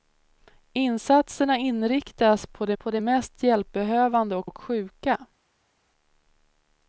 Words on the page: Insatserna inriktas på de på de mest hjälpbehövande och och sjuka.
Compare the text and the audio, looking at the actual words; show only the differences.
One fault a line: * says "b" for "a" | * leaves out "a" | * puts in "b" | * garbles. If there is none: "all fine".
all fine